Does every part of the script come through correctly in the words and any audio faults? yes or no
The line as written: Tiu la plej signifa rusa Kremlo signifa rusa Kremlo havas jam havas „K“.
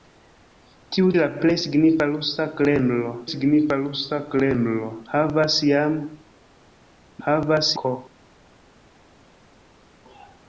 yes